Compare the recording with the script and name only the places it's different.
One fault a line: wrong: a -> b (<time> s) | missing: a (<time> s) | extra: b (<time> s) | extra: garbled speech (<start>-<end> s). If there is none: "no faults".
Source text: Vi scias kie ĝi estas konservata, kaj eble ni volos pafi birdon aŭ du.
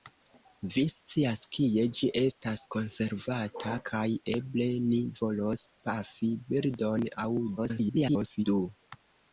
extra: garbled speech (7.6-8.5 s)